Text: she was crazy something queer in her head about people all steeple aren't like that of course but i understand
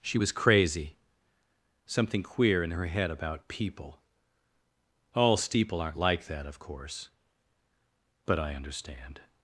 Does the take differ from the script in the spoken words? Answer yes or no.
no